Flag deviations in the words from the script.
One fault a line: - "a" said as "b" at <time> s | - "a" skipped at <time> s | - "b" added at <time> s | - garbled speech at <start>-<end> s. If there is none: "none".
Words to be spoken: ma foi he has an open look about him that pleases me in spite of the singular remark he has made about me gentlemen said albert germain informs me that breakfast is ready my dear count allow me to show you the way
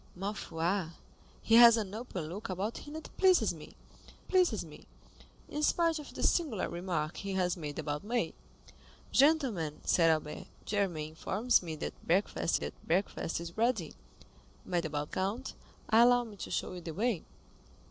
- "pleases me" added at 4.3 s
- "that breakfast" added at 12.5 s
- "dear" said as "about" at 14.8 s